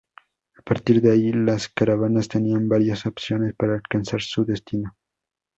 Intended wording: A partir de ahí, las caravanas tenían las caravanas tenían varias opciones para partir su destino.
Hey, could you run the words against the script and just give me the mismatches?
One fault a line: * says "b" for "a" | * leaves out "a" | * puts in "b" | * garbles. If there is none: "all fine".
* leaves out "las caravanas tenían"
* says "alcanzar" for "partir"